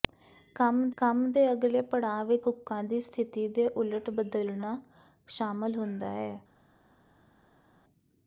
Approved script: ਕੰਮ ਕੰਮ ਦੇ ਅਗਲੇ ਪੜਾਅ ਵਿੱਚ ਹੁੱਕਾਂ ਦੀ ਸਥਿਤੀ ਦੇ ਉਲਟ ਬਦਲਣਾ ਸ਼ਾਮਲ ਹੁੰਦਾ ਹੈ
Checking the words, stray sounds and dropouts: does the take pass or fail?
pass